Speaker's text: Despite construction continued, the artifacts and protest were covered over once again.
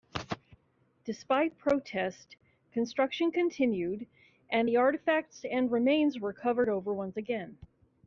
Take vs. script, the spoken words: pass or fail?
fail